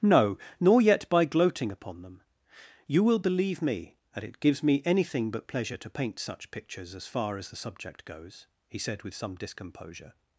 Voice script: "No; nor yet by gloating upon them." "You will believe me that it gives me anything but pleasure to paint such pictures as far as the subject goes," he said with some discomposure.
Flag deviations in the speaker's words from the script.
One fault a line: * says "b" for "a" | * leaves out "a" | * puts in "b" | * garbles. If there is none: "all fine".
all fine